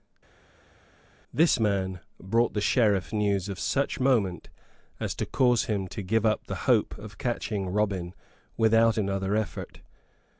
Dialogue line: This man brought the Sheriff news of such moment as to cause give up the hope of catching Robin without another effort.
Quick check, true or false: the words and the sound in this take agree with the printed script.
false